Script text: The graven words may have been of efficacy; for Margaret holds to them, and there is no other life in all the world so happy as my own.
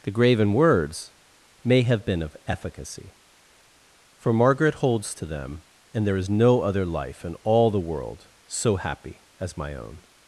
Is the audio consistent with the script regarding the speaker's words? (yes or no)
yes